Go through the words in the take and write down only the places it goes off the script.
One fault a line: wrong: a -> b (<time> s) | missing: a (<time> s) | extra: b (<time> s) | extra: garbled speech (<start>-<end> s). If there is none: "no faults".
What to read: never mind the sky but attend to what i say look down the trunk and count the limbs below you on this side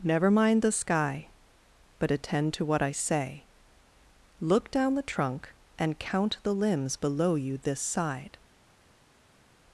missing: on (7.6 s)